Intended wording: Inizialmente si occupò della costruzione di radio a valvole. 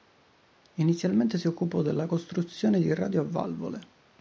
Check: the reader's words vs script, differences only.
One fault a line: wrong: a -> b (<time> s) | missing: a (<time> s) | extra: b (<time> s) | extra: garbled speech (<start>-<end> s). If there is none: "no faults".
no faults